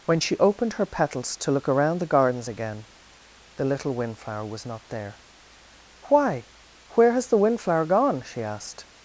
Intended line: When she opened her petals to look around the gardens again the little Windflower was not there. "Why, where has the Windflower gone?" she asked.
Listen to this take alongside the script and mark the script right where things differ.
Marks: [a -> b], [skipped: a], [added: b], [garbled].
When she opened her petals to look around the gardens again the little Windflower was not there. "Why, where has the Windflower gone?" she asked.